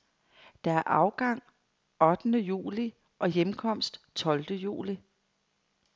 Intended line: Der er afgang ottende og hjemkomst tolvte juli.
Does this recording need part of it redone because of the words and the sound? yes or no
yes